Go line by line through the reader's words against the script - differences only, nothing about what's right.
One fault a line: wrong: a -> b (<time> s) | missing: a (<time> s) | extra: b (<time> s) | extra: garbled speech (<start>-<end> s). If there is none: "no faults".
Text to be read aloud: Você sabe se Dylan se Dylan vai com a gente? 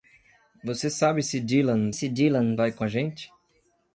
no faults